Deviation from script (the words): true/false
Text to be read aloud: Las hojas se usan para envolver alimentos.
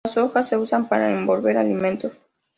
false